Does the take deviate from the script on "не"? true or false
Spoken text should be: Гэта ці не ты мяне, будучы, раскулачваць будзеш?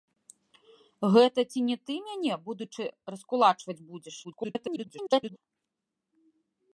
false